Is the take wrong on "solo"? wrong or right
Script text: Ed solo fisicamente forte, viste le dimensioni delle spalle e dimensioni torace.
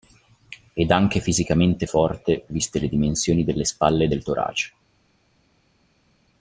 wrong